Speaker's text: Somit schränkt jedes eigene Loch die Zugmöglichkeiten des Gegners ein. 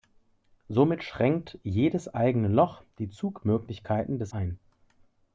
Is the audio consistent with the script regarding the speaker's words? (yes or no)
no